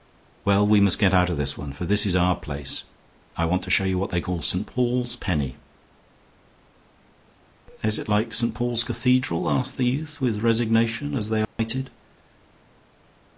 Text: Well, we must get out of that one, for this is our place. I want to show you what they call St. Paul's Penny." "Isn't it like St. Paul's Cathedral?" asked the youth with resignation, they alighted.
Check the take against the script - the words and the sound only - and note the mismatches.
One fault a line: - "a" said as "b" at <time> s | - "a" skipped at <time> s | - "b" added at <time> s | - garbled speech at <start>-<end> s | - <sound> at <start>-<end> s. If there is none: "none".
- "that" said as "this" at 1.4 s
- "Isn't" said as "Is" at 7.8 s
- "as" added at 11.1 s
- dropout at 11.4-11.6 s